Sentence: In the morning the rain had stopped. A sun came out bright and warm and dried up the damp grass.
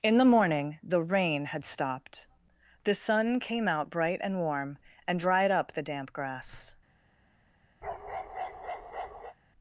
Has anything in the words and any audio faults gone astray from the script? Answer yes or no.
yes